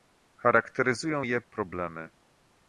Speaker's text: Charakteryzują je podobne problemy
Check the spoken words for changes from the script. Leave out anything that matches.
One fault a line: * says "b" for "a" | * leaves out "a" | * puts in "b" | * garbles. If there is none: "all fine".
* leaves out "podobne"